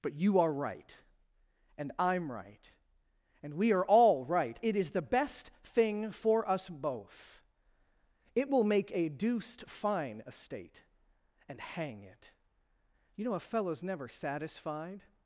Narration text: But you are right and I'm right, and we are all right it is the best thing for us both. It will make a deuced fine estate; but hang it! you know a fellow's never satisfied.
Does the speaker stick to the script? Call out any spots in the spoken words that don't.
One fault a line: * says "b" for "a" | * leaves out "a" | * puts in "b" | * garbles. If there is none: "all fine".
* says "and" for "but"